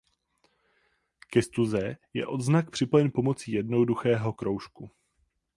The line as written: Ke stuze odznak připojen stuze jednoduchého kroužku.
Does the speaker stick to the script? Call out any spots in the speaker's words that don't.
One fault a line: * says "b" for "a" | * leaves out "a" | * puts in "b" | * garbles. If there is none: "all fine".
* puts in "je"
* says "pomocí" for "stuze"